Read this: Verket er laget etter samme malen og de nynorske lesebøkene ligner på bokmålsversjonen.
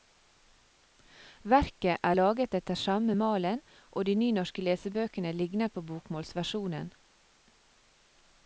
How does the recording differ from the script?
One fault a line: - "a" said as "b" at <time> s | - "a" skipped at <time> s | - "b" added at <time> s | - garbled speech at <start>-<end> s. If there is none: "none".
none